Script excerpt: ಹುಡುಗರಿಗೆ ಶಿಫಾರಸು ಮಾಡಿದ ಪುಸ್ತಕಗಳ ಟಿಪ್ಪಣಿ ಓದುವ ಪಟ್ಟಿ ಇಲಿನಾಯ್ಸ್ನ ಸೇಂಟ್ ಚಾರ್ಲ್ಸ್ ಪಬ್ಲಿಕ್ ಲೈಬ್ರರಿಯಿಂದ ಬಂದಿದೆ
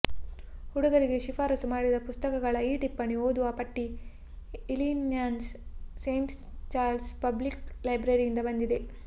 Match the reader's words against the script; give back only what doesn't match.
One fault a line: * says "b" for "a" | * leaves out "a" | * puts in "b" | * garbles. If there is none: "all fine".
* puts in "ಈ"